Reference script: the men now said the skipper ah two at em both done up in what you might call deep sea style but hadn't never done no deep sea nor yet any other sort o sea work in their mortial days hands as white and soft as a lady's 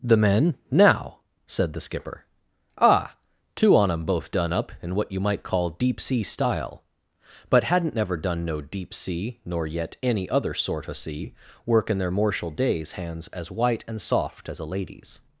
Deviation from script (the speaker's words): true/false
true